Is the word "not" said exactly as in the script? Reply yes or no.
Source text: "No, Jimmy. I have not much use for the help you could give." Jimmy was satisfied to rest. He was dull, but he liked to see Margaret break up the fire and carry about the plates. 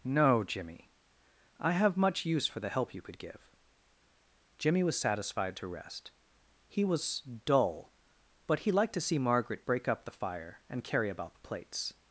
no